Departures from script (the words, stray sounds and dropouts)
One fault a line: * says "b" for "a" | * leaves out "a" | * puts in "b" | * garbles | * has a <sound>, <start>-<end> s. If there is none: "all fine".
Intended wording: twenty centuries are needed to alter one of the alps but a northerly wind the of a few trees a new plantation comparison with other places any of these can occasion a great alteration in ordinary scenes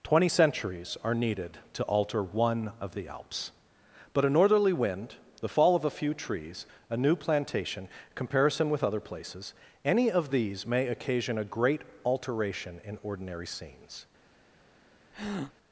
* puts in "fall"
* says "may" for "can"
* has a breath, 15.1-15.5 s